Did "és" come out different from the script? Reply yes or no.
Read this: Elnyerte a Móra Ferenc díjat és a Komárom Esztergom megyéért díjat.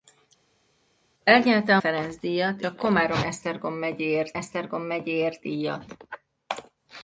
yes